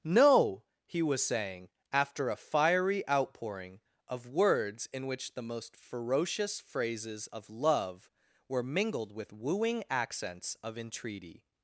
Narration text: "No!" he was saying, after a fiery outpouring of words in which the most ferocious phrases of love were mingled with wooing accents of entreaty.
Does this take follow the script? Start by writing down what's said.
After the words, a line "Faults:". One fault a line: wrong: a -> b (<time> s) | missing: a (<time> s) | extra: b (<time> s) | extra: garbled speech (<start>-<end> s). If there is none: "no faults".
"No!" he was saying, after a fiery outpouring of words in which the most ferocious phrases of love were mingled with wooing accents of entreaty.
Faults:
no faults